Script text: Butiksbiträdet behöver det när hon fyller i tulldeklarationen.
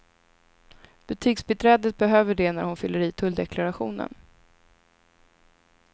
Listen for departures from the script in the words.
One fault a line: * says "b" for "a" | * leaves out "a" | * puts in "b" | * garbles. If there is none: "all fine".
all fine